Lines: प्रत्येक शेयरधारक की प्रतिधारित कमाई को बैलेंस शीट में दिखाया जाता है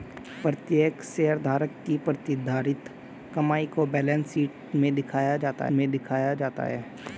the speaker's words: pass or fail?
fail